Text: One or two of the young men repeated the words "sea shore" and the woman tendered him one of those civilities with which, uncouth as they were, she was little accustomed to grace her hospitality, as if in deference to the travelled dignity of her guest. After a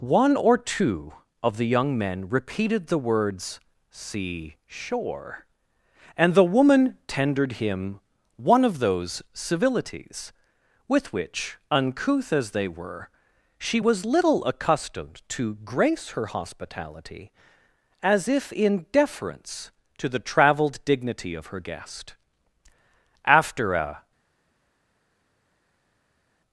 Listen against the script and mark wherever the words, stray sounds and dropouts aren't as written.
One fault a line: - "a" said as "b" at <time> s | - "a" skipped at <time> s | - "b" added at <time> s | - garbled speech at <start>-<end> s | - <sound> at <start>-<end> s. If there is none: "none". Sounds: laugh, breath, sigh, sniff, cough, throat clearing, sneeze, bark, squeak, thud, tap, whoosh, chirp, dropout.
none